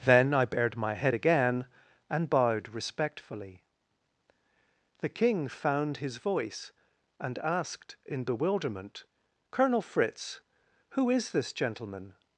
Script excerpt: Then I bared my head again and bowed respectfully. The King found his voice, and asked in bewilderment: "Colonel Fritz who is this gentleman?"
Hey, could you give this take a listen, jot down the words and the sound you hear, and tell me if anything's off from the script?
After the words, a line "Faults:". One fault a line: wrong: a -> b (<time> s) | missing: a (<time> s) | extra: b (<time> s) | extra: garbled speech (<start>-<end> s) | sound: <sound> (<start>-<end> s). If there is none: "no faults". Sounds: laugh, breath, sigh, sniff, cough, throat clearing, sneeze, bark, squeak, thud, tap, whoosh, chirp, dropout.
Then I bared my head again and bowed respectfully. The King found his voice, and asked in bewilderment: "Colonel Fritz who is this gentleman?"
Faults:
no faults